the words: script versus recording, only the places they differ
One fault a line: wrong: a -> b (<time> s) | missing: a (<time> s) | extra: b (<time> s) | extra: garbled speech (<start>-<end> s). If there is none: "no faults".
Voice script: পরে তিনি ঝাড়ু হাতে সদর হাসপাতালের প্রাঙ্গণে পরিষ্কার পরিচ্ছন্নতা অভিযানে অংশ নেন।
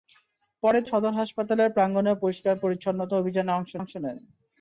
missing: তিনি ঝাড়ু হাতে (0.8 s)
extra: অংশ (3.8 s)